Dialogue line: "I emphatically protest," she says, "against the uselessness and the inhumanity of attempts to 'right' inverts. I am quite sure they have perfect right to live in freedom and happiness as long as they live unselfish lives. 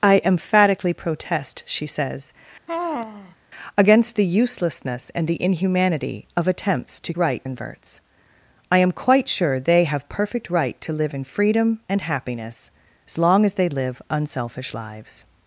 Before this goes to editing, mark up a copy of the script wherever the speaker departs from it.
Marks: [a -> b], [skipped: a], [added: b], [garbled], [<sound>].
"I emphatically protest," she says, [sigh] "against the uselessness and the inhumanity of attempts to 'right' inverts. I am quite sure they have perfect right to live in freedom and happiness as long as they live unselfish lives.